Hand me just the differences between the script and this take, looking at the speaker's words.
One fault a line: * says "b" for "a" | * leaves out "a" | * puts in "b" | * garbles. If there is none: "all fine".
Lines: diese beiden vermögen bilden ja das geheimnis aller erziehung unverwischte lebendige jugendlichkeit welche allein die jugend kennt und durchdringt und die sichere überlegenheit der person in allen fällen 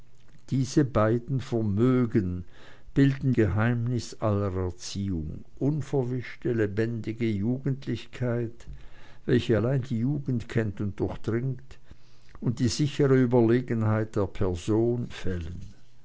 * leaves out "ja das"
* leaves out "in allen"